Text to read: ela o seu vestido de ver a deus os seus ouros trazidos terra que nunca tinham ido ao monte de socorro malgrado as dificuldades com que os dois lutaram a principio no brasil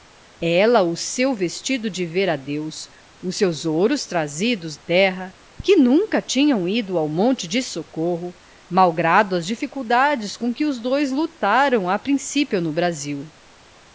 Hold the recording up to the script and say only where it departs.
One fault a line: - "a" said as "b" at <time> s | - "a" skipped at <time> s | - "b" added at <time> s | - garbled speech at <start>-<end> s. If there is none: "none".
none